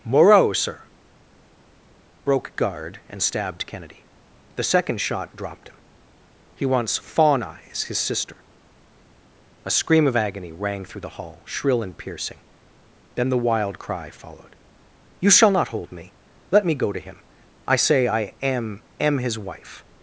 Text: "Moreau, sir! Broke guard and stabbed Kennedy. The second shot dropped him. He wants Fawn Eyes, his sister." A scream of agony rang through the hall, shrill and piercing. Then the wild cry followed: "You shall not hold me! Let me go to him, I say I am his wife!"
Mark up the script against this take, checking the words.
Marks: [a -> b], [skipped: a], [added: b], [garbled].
"Moreau, sir! Broke guard and stabbed Kennedy. The second shot dropped him. He wants Fawn Eyes, his sister." A scream of agony rang through the hall, shrill and piercing. Then the wild cry followed: "You shall not hold me! Let me go to him, I say I am [added: am] his wife!"